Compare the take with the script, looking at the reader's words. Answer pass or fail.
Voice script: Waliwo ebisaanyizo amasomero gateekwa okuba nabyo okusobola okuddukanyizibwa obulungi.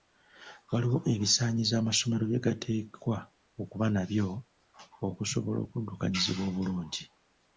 fail